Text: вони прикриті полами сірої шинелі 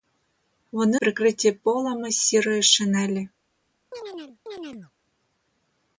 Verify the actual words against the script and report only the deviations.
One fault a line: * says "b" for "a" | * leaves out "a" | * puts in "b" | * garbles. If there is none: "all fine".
all fine